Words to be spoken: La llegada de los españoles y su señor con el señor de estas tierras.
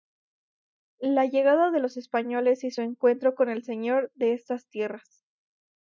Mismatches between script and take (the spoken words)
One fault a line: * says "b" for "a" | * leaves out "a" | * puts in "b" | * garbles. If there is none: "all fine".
* says "encuentro" for "señor"